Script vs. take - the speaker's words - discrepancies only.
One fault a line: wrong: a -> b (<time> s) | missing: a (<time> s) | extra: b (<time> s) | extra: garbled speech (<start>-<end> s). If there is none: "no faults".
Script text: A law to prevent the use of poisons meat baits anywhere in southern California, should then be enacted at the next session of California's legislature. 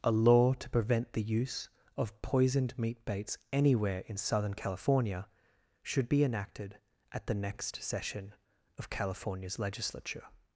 wrong: poisons -> poisoned (2.2 s)
missing: then (6.1 s)